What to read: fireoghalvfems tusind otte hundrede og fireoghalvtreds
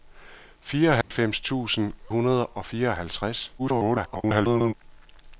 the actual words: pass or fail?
fail